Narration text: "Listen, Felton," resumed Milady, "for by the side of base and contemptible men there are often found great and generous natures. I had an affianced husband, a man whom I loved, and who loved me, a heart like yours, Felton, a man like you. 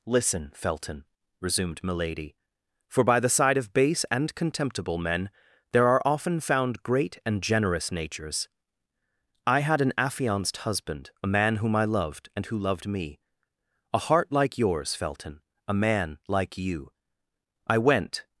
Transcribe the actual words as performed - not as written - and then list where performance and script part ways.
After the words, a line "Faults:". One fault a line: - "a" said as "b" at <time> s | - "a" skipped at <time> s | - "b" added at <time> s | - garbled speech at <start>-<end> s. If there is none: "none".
"Listen, Felton," resumed Milady, "for by the side of base and contemptible men there are often found great and generous natures. I had an affianced husband, a man whom I loved, and who loved me, a heart like yours, Felton, a man like you. I went
Faults:
- "I went" added at 17.7 s